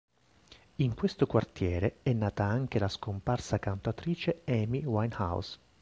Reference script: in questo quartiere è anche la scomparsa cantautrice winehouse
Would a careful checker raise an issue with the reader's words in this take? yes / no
yes